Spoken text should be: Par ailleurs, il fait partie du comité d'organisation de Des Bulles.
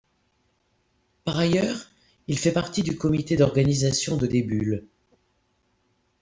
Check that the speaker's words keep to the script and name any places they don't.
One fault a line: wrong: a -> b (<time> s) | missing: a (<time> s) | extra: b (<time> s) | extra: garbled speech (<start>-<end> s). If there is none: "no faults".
no faults